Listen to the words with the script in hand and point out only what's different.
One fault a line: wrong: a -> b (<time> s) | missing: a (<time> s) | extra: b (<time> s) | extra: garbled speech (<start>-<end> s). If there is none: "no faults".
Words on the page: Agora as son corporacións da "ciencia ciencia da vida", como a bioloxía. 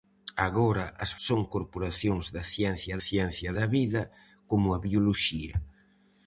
no faults